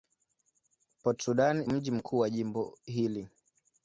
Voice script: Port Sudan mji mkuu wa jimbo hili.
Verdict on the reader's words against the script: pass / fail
pass